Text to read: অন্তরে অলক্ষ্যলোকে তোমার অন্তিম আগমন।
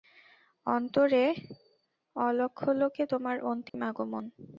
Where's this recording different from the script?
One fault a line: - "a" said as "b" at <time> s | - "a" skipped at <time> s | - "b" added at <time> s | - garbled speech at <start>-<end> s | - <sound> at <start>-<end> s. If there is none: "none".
- dropout at 3.7-3.7 s